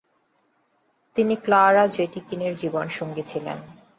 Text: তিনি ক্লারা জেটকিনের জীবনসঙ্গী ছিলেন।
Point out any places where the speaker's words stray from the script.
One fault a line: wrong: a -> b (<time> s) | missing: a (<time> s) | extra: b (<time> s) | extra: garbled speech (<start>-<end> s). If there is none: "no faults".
no faults